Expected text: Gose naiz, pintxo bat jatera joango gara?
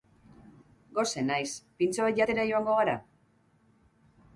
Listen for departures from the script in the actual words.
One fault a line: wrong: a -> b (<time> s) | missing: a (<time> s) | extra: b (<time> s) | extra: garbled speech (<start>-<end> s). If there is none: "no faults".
no faults